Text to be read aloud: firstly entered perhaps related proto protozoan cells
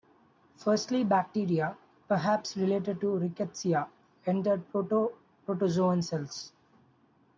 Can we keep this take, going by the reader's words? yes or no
no